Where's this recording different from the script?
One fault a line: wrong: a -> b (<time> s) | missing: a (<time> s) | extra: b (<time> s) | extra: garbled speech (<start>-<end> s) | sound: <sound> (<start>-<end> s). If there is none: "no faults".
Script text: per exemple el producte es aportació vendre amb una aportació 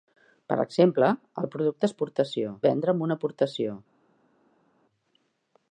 no faults